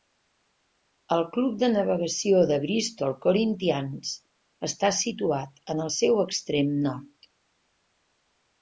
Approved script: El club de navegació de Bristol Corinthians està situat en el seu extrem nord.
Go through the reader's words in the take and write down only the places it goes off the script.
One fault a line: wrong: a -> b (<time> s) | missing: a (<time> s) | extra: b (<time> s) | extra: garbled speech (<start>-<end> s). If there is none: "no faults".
no faults